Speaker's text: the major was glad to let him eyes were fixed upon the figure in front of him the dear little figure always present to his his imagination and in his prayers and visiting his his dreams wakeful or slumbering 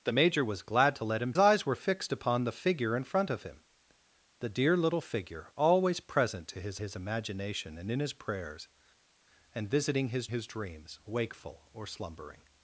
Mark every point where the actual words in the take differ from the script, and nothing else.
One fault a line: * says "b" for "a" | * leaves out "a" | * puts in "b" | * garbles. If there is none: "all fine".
all fine